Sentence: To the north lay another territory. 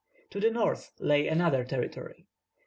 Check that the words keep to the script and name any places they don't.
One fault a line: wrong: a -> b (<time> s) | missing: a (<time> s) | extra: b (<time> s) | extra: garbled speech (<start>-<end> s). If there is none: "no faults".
no faults